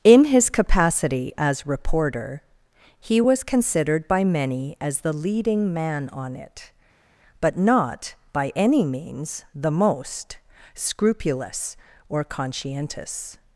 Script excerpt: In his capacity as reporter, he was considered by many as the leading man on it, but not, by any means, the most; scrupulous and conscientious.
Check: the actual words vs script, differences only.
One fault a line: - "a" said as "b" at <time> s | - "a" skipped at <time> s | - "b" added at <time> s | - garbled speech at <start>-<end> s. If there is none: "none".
- "and" said as "or" at 12.1 s